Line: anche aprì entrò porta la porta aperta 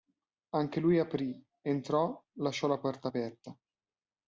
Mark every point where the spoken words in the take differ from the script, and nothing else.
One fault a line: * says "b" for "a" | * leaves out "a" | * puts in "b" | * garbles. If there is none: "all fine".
* puts in "lui"
* says "lasciò" for "porta"